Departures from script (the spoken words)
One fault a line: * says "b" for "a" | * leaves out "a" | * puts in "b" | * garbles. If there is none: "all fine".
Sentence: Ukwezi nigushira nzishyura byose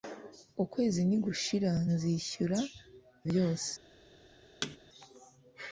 all fine